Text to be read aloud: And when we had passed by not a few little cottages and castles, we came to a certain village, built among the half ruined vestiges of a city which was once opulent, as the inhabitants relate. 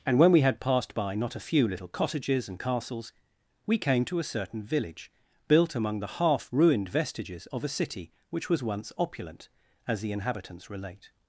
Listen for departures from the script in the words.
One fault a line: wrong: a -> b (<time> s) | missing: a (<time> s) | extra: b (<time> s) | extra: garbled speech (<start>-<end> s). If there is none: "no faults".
no faults